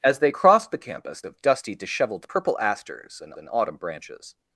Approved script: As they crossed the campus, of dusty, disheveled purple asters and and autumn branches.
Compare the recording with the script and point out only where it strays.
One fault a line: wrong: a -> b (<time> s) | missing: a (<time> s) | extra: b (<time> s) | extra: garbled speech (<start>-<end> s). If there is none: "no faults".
no faults